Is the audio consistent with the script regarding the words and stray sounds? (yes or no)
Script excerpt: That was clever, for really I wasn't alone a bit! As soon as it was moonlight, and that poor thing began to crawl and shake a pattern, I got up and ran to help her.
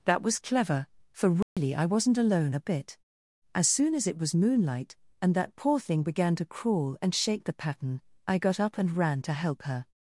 no